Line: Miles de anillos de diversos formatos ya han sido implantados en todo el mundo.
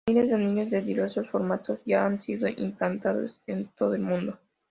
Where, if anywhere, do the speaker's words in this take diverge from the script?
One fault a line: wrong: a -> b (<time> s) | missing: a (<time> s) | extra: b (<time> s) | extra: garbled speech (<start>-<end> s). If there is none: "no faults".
no faults